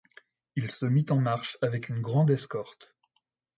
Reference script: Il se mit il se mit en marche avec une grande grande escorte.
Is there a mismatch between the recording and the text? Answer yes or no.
yes